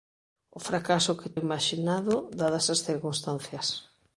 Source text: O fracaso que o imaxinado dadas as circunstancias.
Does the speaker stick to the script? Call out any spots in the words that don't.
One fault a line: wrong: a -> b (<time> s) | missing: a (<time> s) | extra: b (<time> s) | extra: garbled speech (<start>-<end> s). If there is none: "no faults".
no faults